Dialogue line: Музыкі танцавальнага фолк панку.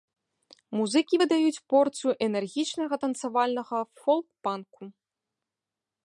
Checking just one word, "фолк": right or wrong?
right